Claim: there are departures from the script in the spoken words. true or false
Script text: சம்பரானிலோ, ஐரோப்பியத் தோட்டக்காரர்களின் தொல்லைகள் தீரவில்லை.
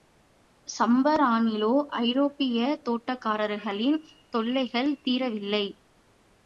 false